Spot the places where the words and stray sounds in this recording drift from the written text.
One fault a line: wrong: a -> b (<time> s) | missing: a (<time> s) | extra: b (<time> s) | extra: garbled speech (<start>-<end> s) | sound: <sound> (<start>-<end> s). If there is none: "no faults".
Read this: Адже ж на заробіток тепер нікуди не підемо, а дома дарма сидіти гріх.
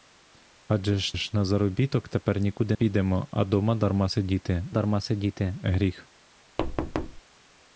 extra: ж (1.1 s)
missing: не (2.8 s)
extra: дарма сидіти (4.7 s)
sound: thud (6.6-7.2 s)